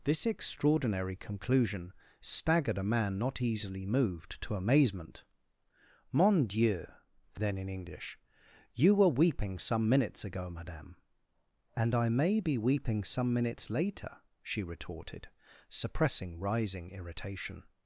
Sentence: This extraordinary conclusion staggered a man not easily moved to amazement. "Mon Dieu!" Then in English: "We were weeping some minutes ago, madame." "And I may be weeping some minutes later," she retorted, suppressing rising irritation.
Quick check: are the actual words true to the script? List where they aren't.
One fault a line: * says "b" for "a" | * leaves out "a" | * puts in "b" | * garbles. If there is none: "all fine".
* says "You" for "We"